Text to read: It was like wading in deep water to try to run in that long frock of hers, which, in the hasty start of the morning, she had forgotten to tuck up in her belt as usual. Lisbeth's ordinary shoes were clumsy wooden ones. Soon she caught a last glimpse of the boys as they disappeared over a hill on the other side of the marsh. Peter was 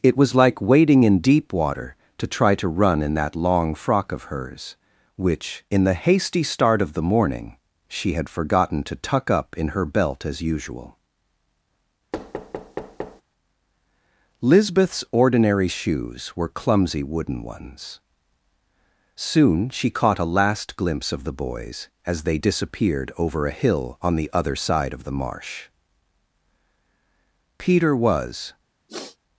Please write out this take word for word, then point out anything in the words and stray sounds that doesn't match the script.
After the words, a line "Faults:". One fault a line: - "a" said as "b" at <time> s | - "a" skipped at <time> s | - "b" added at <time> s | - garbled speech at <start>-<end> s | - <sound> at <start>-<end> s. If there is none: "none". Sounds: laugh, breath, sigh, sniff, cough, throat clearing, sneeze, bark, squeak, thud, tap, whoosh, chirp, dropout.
It was like wading in deep water to try to run in that long frock of hers, which, in the hasty start of the morning, she had forgotten to tuck up in her belt as usual. Lisbeth's ordinary shoes were clumsy wooden ones. Soon she caught a last glimpse of the boys as they disappeared over a hill on the other side of the marsh. Peter was
Faults:
- thud at 12.1-13.2 s
- sniff at 28.9-29.2 s